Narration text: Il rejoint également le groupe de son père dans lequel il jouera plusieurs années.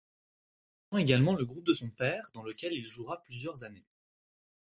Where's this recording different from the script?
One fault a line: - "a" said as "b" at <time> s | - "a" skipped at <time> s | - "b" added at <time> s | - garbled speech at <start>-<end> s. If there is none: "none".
none